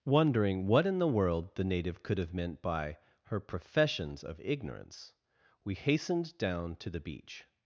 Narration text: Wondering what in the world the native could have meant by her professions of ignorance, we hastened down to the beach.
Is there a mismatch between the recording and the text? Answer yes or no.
no